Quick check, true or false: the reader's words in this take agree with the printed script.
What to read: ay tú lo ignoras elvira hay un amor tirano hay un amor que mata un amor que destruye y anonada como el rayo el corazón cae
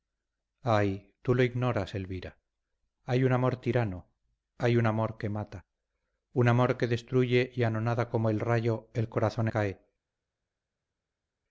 true